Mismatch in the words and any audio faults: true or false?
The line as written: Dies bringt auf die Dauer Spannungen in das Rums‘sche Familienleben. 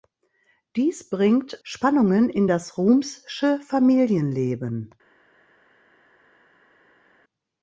true